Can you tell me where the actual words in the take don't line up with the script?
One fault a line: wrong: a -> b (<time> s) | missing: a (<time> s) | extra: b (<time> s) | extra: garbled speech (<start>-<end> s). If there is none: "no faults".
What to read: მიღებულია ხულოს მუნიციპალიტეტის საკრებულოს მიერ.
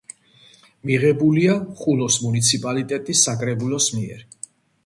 no faults